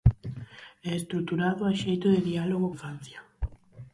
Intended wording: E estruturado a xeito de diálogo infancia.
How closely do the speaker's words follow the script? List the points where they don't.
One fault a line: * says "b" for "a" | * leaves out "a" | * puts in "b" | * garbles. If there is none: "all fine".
all fine